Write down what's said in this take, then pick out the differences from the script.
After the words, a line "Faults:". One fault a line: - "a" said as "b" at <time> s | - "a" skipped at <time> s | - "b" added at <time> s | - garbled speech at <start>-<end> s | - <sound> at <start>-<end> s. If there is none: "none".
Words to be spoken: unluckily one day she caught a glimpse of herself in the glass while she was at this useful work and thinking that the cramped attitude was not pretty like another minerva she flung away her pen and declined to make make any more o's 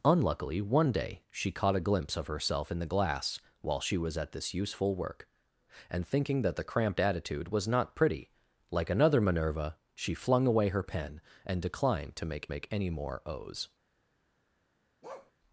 unluckily one day she caught a glimpse of herself in the glass while she was at this useful work and thinking that the cramped attitude was not pretty like another minerva she flung away her pen and declined to make make any more o's
Faults:
- bark at 15.0-15.3 s